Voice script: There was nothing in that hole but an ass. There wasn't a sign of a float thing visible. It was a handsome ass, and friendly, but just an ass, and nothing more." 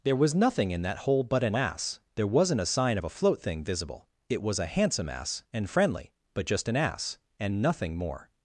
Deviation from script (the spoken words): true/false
false